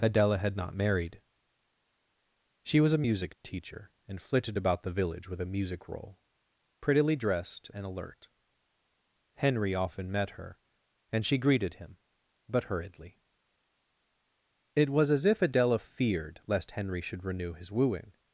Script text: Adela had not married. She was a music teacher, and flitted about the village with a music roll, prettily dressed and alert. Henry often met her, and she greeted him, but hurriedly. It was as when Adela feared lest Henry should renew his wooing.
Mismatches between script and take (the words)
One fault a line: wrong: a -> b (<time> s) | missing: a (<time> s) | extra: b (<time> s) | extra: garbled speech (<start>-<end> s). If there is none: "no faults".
wrong: when -> if (15.2 s)